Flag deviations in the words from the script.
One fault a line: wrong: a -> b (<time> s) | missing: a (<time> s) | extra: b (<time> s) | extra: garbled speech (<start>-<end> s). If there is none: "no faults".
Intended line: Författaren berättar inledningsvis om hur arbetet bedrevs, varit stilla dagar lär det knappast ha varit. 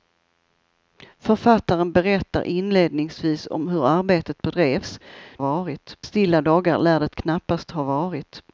no faults